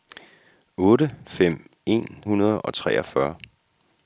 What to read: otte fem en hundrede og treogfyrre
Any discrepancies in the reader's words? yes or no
no